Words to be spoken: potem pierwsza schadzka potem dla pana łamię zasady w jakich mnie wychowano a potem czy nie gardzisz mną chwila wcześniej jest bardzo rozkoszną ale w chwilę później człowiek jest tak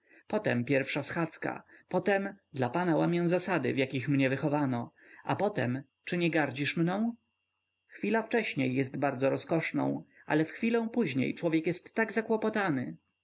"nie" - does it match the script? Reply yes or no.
yes